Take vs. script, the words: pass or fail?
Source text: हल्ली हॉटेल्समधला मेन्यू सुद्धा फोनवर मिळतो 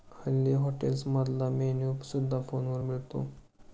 pass